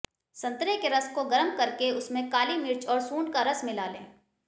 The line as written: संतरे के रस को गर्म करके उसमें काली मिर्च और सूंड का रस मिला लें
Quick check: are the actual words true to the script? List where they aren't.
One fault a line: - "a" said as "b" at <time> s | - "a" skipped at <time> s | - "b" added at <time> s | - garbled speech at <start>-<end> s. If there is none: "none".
none